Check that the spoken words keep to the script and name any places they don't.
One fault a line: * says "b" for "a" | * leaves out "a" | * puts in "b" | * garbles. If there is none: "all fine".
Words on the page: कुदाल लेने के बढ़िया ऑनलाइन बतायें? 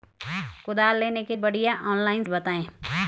all fine